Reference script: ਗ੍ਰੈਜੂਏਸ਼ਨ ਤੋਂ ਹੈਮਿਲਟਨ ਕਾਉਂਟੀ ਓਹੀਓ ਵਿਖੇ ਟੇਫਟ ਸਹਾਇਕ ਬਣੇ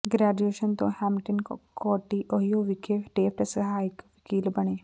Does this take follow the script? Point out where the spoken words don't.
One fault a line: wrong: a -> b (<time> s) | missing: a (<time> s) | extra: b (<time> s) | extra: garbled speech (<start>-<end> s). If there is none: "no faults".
extra: ਵਕੀਲ (4.0 s)